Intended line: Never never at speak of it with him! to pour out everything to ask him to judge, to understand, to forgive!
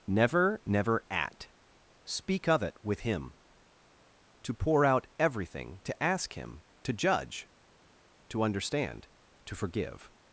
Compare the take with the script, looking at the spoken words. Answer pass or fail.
pass